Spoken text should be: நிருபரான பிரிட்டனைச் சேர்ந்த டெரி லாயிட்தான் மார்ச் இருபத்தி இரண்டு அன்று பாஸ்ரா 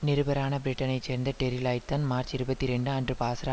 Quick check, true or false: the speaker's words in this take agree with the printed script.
true